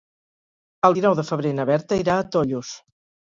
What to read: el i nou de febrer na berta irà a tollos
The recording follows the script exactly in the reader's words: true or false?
true